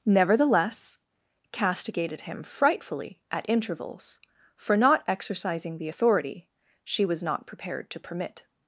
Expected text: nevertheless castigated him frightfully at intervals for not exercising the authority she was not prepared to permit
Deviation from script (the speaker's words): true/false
false